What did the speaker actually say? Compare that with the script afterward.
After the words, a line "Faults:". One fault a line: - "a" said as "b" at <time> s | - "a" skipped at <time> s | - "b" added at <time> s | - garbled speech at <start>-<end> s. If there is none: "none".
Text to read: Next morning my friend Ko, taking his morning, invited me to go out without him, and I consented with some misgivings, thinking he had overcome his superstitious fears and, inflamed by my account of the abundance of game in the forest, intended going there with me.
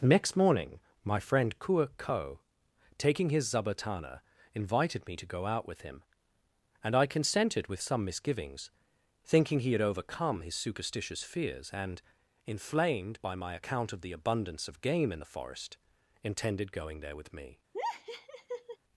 Next morning my friend Kua ko, taking his zabatana, invited me to go out with him, and I consented with some misgivings, thinking he had overcome his superstitious fears and, inflamed by my account of the abundance of game in the forest, intended going there with me.
Faults:
- "Kua" added at 1.6 s
- "morning" said as "zabatana" at 3.5 s
- "without" said as "with" at 5.7 s